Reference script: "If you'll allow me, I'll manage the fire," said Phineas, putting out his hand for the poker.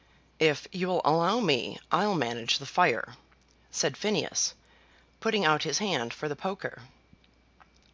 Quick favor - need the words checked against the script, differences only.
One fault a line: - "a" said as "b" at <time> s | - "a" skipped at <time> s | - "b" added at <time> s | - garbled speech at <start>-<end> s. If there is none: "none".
none